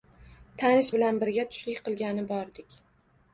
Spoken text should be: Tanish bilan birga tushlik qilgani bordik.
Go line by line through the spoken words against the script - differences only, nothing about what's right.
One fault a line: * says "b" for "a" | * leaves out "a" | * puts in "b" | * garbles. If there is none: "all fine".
all fine